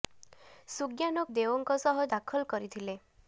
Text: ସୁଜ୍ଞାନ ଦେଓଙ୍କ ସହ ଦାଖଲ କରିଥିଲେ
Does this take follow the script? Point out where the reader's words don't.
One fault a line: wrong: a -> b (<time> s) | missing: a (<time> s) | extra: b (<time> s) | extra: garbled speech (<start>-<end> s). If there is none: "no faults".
no faults